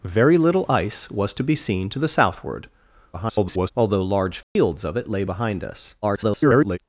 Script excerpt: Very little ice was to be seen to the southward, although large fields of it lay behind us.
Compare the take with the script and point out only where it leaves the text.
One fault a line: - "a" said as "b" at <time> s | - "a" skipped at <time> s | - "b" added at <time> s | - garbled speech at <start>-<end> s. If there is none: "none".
- garbled speech at 3.1-3.7 s
- garbled speech at 6.0-6.8 s